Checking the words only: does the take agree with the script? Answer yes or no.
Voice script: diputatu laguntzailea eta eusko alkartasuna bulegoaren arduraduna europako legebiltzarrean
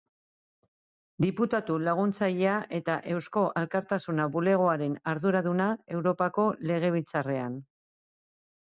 yes